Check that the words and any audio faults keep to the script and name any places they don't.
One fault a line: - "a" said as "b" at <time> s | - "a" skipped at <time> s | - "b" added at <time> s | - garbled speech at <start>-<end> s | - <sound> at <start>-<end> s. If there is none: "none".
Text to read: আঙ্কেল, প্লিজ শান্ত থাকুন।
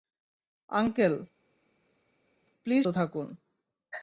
- "শান্ত" skipped at 2.8 s